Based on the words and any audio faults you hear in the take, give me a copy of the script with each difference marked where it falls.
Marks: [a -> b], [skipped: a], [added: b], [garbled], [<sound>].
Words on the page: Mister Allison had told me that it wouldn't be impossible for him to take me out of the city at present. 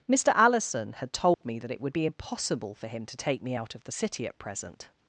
Mister Allison had told [dropout] me that it [wouldn't -> would] be impossible for him to take me out of the city at present.